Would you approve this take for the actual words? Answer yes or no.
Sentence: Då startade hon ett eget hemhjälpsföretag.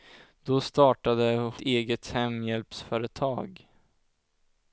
no